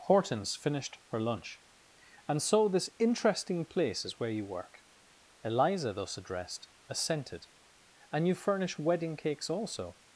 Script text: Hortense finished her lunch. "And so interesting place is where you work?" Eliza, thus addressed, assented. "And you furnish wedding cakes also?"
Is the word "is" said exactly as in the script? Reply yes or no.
yes